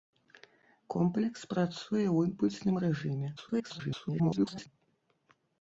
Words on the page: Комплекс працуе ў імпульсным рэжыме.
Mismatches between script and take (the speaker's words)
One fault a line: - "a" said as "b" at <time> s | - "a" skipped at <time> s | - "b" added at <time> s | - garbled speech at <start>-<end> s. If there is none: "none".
- garbled speech at 3.4-4.7 s